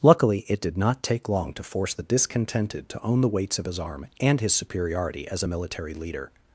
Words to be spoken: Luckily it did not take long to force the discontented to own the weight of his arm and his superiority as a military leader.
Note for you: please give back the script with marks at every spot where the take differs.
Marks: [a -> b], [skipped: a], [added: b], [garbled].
Luckily it did not take long to force the discontented to own the [weight -> weights] of his arm and his superiority as a military leader.